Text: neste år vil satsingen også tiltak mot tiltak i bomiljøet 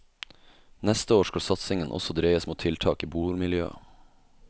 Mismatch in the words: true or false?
true